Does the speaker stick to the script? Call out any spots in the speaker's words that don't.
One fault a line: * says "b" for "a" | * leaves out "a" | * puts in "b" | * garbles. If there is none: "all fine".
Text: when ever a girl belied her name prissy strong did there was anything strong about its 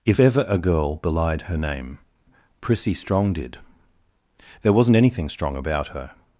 * says "if" for "when"
* says "wasn't" for "was"
* says "her" for "its"